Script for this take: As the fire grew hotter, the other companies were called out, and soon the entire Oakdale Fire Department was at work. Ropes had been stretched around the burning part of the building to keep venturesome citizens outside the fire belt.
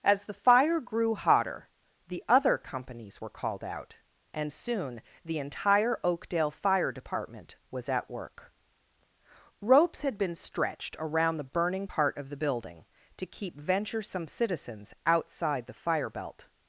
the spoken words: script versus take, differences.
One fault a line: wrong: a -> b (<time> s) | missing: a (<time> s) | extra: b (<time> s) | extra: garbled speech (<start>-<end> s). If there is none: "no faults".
no faults